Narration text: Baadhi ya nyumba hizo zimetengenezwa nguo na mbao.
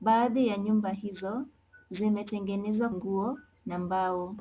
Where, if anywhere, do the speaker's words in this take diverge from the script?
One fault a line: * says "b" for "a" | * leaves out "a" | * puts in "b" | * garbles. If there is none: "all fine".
all fine